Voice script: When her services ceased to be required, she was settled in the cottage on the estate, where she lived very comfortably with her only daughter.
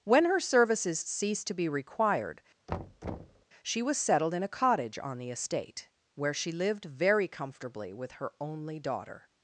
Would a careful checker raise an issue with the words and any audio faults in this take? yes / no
yes